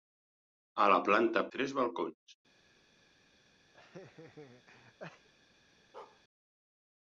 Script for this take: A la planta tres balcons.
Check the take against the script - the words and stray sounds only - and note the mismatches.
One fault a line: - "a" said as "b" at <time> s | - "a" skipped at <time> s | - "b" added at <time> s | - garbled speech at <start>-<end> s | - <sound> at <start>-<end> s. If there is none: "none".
- laugh at 3.7-5.3 s
- bark at 5.9-6.2 s